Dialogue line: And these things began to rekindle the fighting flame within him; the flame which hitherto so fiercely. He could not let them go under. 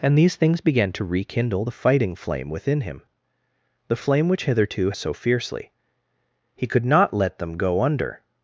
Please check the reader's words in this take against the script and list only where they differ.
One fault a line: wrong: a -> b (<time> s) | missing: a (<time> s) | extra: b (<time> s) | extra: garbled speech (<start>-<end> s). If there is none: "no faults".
no faults